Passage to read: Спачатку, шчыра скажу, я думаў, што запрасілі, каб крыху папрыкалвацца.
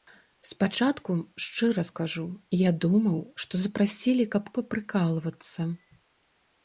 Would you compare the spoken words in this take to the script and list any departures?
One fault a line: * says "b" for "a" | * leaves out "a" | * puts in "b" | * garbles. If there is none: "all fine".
* leaves out "крыху"